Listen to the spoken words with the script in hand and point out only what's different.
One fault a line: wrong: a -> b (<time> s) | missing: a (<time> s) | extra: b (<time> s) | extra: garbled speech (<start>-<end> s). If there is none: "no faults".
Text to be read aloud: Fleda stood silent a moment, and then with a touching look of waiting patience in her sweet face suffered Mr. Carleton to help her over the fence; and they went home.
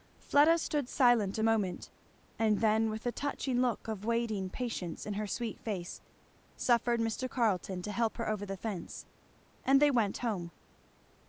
no faults